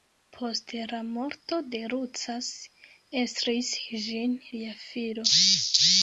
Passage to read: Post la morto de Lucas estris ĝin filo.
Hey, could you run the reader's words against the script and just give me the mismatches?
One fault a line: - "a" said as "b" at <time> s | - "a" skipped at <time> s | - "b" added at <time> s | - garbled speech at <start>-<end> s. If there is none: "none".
- "lia" added at 4.5 s